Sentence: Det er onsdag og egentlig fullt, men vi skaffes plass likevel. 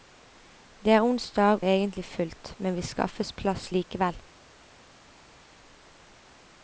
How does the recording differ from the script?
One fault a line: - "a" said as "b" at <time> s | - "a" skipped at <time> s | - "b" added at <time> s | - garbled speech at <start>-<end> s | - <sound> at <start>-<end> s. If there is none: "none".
- "og" skipped at 1.6 s